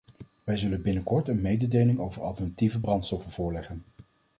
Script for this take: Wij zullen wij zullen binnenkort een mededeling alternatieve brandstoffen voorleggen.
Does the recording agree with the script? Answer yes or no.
no